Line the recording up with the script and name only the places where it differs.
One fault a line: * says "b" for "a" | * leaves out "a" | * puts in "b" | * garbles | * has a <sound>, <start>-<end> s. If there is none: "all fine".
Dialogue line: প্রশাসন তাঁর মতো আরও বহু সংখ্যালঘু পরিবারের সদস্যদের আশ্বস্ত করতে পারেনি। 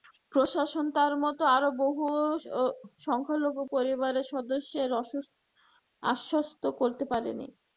all fine